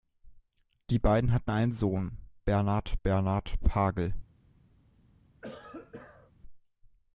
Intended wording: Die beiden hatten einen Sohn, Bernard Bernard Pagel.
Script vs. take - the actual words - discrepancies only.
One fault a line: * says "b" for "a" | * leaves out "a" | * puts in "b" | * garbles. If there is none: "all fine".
all fine